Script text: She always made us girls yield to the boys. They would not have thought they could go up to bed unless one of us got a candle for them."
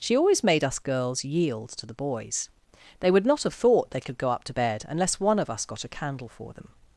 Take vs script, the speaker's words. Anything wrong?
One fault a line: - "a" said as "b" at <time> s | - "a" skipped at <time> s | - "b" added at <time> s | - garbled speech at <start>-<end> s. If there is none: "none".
none